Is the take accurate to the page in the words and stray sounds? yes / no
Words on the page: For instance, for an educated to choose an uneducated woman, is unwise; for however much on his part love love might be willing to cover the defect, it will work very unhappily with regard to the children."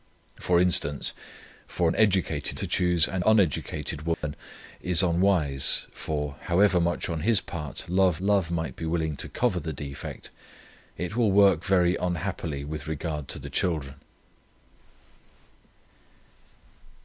no